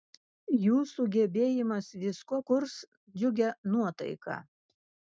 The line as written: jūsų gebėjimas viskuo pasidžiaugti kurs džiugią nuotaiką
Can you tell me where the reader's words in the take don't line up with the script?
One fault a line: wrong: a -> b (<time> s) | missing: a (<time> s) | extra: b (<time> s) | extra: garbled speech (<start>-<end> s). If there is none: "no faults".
missing: pasidžiaugti (2.4 s)